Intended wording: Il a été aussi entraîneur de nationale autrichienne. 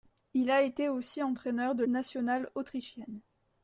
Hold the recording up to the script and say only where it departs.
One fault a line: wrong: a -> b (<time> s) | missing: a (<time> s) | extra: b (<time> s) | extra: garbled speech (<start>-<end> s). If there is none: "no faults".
no faults